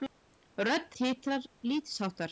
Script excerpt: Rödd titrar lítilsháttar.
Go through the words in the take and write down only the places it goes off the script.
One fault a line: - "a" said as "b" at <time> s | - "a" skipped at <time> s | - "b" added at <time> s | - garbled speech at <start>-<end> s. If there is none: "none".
none